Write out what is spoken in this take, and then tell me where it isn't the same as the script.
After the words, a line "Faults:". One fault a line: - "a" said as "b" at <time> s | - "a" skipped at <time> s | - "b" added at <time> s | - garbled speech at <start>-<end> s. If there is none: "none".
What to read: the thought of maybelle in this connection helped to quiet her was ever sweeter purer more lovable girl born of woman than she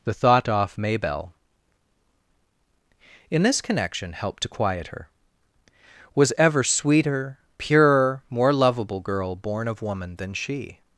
the thought off maybelle in this connection helped to quiet her was ever sweeter purer more lovable girl born of woman than she
Faults:
- "of" said as "off" at 0.5 s